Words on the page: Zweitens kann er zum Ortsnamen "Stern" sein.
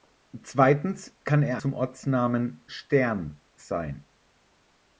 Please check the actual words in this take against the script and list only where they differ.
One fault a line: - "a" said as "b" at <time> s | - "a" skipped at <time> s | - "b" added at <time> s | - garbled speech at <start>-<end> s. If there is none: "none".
none